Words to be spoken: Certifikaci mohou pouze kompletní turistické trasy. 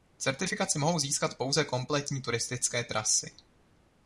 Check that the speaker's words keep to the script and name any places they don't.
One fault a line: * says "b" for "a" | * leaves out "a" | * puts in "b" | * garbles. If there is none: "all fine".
* puts in "získat"